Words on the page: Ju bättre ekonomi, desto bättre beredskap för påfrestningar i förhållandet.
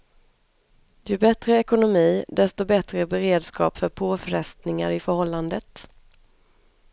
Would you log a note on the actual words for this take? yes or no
no